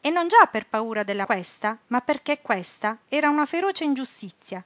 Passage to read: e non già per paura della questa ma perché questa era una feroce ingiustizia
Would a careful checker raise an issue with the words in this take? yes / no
no